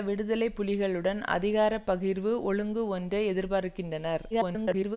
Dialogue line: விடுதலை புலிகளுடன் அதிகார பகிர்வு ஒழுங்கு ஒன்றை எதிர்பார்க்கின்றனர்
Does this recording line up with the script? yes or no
no